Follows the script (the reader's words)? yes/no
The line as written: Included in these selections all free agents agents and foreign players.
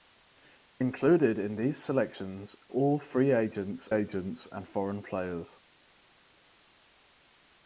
yes